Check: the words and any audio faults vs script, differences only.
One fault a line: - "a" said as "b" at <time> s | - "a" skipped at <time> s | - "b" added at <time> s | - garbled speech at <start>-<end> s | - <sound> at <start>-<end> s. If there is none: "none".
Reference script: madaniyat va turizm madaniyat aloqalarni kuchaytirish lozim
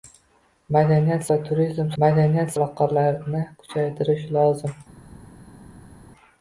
none